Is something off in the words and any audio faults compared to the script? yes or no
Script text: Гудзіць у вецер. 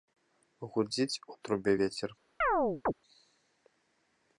yes